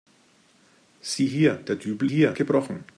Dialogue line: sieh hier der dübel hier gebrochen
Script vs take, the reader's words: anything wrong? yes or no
no